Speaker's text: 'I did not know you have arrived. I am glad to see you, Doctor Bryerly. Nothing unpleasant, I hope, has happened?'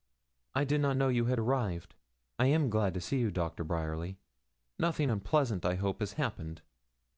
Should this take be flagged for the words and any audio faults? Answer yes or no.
yes